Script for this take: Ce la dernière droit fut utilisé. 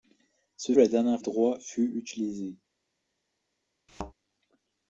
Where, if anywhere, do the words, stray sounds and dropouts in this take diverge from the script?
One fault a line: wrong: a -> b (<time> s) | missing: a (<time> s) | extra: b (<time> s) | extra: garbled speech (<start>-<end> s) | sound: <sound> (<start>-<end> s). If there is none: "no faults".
sound: thud (3.9-4.1 s)